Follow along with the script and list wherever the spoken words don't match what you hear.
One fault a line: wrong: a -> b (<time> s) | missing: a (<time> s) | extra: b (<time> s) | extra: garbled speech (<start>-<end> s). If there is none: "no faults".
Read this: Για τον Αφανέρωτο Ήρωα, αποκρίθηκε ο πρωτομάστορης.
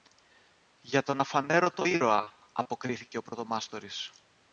no faults